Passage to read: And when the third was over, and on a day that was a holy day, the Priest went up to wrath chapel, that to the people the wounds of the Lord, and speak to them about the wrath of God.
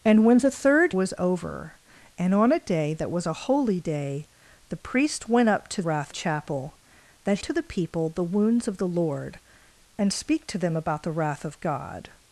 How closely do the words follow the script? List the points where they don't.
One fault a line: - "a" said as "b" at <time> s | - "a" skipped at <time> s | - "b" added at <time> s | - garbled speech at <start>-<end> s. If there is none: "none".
none